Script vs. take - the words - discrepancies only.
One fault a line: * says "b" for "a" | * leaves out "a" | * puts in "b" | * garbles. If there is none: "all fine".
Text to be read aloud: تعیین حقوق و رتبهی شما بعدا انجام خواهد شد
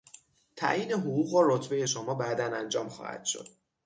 all fine